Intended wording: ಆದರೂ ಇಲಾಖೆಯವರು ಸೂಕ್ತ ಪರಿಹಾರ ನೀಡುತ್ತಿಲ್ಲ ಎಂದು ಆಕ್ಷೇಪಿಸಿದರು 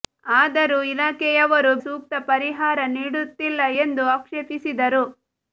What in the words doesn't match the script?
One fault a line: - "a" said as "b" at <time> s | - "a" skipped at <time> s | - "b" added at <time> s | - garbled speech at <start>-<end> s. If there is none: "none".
none